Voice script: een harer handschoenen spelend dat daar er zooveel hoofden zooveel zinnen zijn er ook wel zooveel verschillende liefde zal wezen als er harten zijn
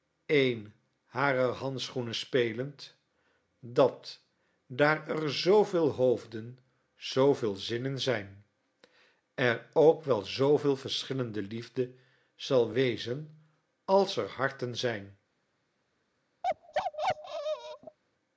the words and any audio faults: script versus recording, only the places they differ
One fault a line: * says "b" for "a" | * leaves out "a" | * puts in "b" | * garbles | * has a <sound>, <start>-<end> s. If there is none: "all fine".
* has a bark, 16.4-18.0 s